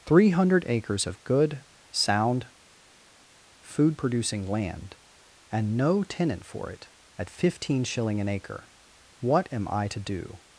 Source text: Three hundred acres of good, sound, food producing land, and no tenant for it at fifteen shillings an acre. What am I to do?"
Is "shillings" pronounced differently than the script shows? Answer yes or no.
yes